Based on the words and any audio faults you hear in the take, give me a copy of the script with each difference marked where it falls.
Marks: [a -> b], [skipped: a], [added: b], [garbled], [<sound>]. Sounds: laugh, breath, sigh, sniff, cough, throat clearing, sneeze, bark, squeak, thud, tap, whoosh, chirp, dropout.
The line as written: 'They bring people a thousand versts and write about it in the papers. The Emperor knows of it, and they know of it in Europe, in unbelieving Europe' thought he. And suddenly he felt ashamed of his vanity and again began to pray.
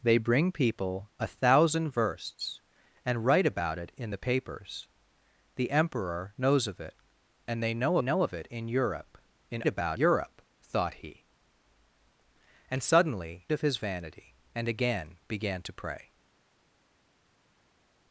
'They bring people a thousand versts and write about it in the papers. The Emperor knows of it, and they know [added: know] of it in Europe, in [unbelieving -> about] Europe' thought he. And suddenly [skipped: he felt ashamed] of his vanity and again began to pray.